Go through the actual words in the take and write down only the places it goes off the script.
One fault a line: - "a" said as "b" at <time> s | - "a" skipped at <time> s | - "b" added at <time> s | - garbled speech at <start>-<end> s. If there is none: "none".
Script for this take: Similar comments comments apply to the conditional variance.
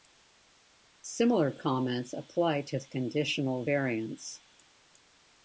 - "comments" skipped at 2.1 s